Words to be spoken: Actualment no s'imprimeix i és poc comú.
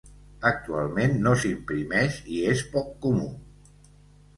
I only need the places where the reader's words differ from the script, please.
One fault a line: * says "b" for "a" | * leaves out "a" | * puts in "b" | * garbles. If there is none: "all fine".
all fine